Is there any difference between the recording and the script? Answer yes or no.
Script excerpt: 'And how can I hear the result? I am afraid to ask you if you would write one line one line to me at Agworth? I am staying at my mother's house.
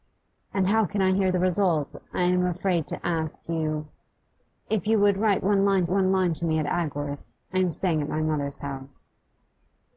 no